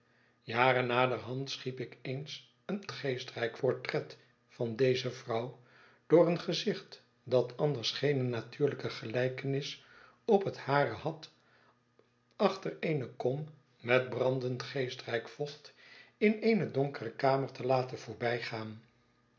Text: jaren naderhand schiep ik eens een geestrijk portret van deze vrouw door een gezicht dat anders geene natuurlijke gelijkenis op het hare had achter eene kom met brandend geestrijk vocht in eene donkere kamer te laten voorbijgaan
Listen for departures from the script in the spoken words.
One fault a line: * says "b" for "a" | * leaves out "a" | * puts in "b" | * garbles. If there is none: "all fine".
all fine